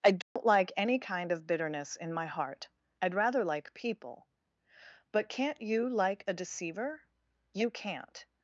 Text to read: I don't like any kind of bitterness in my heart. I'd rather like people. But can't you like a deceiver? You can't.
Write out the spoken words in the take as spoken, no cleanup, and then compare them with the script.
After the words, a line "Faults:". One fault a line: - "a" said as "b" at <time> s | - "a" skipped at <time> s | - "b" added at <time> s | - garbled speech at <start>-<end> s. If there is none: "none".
I don't like any kind of bitterness in my heart. I'd rather like people. But can't you like a deceiver? You can't.
Faults:
none